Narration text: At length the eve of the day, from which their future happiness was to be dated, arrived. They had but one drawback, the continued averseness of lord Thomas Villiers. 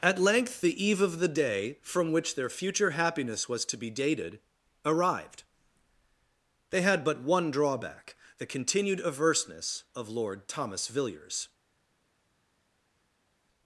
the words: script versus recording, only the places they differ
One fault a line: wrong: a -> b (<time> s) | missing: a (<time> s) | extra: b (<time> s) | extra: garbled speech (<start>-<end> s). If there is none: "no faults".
no faults